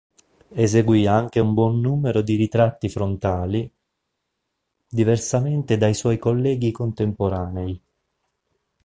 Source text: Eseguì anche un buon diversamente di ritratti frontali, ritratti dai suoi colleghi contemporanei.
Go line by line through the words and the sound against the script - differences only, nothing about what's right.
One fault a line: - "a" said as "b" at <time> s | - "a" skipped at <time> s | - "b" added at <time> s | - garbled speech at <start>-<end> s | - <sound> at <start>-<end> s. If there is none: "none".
- "diversamente" said as "numero" at 1.8 s
- "ritratti" said as "diversamente" at 4.9 s